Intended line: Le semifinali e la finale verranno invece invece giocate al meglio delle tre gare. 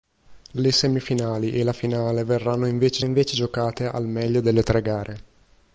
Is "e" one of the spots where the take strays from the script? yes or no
no